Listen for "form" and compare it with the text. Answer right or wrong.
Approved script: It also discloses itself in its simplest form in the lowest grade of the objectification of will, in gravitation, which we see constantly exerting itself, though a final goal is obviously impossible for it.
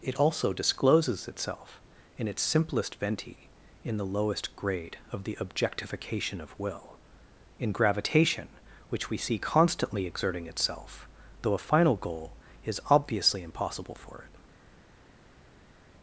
wrong